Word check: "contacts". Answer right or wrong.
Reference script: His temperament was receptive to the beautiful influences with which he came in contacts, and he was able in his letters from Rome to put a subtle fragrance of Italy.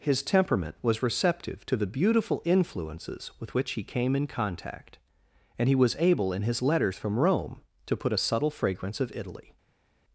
wrong